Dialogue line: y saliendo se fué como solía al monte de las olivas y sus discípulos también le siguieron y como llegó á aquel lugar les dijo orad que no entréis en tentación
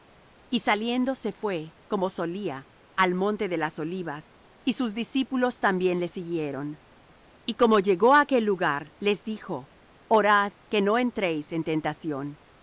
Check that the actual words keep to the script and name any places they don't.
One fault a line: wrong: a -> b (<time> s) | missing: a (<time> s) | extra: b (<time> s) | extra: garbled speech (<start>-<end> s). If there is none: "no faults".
no faults